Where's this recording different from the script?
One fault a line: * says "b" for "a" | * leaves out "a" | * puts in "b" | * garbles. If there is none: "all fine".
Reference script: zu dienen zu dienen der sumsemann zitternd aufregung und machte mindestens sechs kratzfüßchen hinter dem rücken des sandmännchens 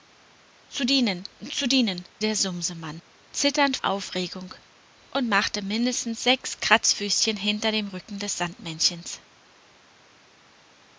all fine